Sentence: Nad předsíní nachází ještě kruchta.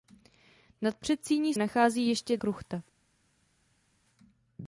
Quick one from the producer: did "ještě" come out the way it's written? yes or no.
yes